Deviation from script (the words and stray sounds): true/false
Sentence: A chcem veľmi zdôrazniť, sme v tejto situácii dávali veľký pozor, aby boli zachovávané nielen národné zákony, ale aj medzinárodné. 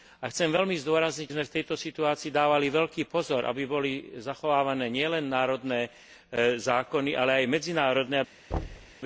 true